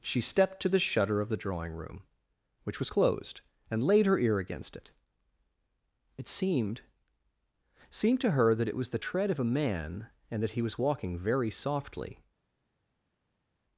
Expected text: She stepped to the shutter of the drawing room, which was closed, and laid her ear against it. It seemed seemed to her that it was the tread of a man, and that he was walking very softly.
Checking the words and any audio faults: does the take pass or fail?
pass